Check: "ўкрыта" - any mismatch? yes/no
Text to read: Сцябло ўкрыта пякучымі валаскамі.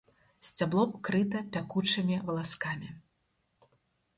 no